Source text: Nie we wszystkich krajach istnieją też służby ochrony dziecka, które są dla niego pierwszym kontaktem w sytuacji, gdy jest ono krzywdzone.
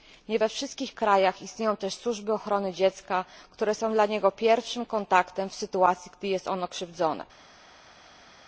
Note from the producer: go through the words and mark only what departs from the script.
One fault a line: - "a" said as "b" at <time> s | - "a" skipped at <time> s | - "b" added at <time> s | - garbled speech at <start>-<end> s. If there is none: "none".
none